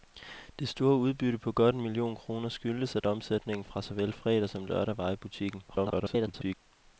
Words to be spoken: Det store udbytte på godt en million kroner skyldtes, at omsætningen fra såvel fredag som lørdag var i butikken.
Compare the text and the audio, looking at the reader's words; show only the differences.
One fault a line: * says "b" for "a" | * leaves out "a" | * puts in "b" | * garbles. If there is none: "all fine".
* garbles